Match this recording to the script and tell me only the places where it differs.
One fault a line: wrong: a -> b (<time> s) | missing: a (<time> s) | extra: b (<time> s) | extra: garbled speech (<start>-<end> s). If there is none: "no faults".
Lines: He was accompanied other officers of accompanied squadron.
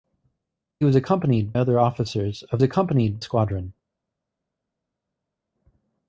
no faults